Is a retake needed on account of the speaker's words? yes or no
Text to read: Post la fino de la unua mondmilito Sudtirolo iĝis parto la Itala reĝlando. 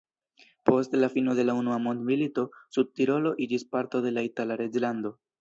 yes